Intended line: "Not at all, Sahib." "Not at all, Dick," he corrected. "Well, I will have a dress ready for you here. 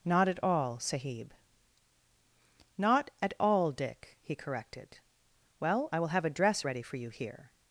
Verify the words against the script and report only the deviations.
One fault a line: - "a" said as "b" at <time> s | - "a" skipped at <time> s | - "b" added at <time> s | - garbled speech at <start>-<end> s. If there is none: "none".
none